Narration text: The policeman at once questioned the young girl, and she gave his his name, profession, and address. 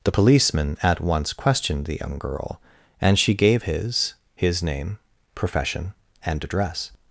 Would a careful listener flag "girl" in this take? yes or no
no